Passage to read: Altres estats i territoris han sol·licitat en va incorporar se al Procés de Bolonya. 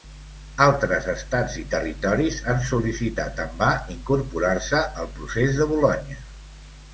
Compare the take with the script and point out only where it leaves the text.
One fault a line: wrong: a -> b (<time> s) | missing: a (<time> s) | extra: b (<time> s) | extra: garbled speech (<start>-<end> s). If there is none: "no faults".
no faults